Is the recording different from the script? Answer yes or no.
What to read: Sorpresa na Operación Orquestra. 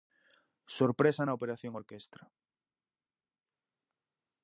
no